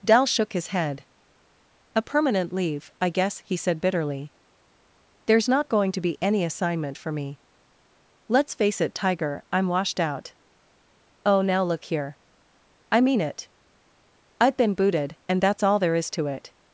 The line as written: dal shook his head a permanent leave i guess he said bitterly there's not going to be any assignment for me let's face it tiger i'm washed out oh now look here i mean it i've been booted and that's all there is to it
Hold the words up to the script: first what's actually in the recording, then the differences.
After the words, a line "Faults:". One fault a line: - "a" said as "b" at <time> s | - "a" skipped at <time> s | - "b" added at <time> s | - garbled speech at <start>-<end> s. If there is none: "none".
dal shook his head a permanent leave i guess he said bitterly there's not going to be any assignment for me let's face it tiger i'm washed out oh now look here i mean it i've been booted and that's all there is to it
Faults:
none